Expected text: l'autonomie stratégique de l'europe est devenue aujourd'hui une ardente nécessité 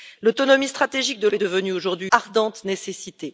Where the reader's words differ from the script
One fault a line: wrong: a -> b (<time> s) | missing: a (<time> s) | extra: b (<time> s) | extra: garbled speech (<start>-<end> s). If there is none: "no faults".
missing: l'europe (1.3 s)
missing: une (2.1 s)